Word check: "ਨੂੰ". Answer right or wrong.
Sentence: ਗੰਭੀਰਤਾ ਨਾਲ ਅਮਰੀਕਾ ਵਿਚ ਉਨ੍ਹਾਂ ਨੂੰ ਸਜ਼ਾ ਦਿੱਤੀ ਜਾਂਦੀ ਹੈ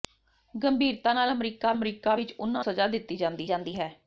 wrong